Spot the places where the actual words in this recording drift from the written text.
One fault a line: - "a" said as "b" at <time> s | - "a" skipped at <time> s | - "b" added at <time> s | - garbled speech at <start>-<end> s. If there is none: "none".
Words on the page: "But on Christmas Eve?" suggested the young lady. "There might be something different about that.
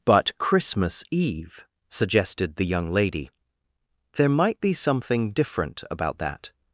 - "on" skipped at 0.4 s